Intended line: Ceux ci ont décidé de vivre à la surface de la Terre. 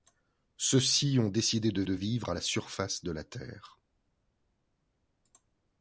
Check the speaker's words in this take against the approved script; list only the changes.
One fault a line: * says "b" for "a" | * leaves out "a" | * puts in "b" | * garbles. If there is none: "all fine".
* puts in "de"